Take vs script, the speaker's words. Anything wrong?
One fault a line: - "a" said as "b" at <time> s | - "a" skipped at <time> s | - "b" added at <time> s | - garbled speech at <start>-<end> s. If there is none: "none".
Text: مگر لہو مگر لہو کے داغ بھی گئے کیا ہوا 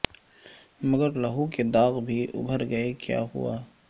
- "مگر لہو" skipped at 1.5 s
- "ابھر" added at 2.3 s